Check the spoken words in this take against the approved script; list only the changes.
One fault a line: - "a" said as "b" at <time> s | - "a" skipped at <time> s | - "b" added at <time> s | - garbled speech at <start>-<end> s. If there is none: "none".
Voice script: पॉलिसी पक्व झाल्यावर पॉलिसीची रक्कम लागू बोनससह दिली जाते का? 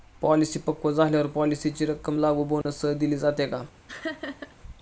none